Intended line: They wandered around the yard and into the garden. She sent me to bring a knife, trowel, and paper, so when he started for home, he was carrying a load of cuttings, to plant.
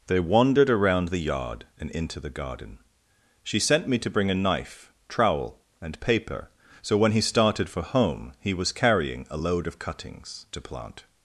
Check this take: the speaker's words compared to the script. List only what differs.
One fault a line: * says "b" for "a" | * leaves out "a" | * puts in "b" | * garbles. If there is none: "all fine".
all fine